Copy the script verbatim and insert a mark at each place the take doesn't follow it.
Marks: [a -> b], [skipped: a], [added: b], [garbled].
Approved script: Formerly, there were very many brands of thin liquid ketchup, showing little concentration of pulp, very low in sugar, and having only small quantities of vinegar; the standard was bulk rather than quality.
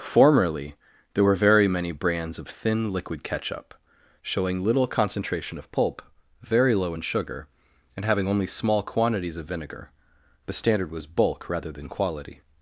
Formerly, there were very many brands of thin liquid ketchup, showing little concentration of pulp, very low in sugar, and having only small quantities of vinegar; the standard was bulk rather than quality.